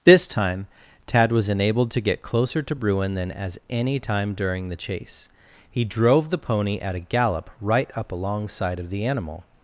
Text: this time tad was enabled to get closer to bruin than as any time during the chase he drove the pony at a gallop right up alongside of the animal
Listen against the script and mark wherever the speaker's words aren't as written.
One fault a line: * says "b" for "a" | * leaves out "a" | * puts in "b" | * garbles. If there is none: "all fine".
all fine